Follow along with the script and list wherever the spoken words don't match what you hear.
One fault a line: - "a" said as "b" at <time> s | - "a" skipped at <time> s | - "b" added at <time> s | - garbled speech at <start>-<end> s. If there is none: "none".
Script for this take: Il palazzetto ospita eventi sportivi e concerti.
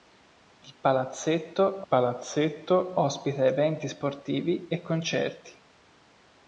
- "palazzetto" added at 1.9 s